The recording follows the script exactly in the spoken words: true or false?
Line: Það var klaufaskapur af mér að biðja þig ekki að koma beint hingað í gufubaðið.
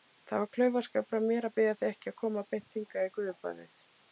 true